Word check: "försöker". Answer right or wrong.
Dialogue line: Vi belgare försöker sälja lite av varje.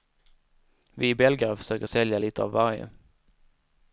right